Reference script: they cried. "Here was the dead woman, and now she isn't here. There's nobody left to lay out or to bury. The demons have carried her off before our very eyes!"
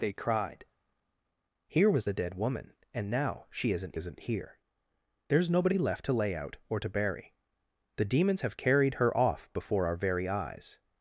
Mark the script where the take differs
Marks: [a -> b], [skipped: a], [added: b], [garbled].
they cried. "Here was the dead woman, and now she isn't [added: isn't] here. There's nobody left to lay out or to bury. The demons have carried her off before our very eyes!"